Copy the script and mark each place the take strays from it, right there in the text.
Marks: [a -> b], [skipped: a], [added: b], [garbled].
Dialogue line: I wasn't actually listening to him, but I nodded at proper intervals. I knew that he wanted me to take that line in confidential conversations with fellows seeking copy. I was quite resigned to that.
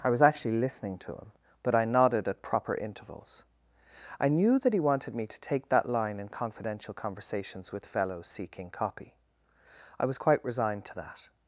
I [wasn't -> was] actually listening to him, but I nodded at proper intervals. I knew that he wanted me to take that line in confidential conversations with fellows seeking copy. I was quite resigned to that.